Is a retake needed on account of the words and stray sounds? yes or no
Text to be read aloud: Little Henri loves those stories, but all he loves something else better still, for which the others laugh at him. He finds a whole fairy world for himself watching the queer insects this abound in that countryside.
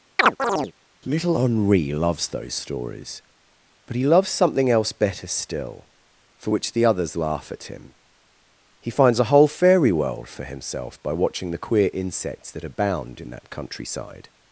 yes